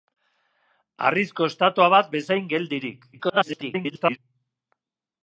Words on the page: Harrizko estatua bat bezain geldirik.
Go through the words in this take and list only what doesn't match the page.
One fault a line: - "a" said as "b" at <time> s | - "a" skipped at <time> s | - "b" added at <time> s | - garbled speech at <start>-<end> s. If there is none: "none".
- garbled speech at 3.1-4.2 s